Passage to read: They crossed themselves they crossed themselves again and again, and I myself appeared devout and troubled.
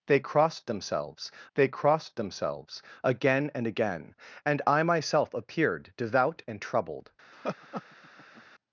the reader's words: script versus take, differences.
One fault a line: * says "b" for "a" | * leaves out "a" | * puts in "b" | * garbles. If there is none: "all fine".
all fine